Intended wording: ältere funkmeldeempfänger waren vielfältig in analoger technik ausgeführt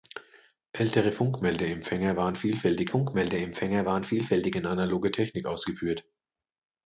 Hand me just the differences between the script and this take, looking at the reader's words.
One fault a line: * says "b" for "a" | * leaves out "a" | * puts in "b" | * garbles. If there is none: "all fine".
* puts in "funkmeldeempfänger waren vielfältig"